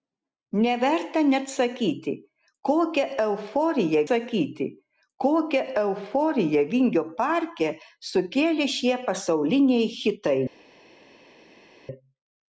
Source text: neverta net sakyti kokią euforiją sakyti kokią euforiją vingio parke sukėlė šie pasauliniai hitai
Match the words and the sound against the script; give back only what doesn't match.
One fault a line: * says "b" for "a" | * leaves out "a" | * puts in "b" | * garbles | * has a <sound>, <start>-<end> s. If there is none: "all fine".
all fine